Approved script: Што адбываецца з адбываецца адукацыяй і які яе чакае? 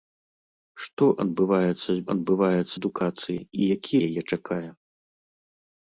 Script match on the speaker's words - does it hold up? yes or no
yes